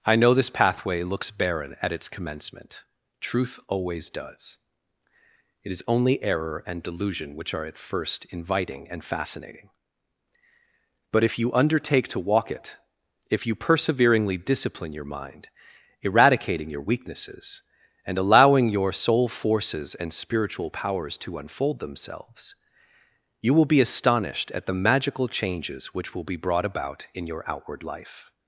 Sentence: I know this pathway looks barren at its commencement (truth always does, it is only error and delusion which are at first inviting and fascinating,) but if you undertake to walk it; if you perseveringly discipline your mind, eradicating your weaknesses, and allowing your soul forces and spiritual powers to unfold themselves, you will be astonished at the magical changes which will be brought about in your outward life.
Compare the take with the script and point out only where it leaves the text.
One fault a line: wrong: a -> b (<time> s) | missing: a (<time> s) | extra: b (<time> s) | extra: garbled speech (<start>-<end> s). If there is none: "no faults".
no faults